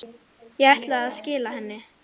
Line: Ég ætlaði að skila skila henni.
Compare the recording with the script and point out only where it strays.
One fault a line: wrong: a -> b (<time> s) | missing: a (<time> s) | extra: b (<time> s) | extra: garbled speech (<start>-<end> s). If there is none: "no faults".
missing: skila (1.6 s)